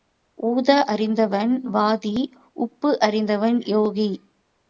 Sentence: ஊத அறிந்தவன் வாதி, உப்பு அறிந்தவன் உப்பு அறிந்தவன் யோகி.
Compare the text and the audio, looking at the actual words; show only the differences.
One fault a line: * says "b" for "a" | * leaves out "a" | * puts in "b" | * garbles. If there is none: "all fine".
* leaves out "உப்பு அறிந்தவன்"